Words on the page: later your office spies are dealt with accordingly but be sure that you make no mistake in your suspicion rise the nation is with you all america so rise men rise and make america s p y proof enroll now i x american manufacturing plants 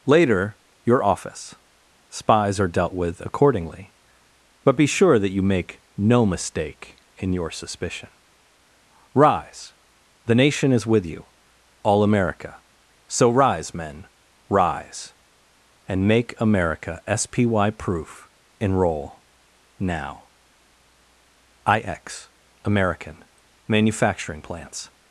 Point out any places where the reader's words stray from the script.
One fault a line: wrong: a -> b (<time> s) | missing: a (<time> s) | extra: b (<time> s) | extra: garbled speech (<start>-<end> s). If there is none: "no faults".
no faults